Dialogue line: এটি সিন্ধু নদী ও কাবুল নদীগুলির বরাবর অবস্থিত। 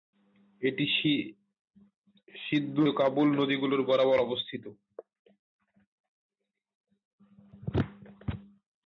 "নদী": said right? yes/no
no